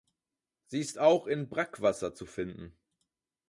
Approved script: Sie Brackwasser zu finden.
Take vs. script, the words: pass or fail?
fail